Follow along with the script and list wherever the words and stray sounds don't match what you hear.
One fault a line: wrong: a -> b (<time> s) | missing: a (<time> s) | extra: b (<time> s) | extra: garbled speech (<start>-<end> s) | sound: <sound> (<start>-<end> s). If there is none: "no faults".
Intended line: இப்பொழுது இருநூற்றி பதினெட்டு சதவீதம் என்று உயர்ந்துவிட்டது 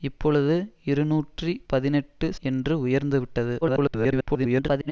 missing: சதவீதம் (2.3 s)
extra: garbled speech (3.6-4.9 s)